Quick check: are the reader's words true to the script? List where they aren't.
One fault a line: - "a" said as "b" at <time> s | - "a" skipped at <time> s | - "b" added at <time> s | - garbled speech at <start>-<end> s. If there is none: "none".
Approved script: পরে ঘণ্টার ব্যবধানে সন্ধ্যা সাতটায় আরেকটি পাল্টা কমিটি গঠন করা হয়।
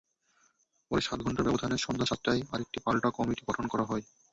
- "সাত" added at 1.0 s